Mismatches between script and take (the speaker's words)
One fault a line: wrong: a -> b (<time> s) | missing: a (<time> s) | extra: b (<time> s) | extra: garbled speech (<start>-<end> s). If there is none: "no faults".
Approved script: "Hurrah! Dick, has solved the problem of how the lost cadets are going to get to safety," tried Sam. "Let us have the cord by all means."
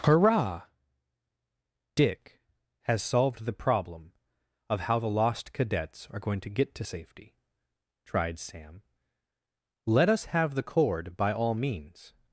no faults